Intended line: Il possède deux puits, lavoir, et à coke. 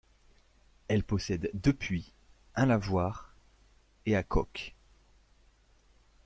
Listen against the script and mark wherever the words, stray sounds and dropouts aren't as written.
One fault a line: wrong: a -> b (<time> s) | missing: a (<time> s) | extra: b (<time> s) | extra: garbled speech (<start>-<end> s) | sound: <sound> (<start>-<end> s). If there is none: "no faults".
wrong: Il -> Elle (0.9 s)
extra: un (2.5 s)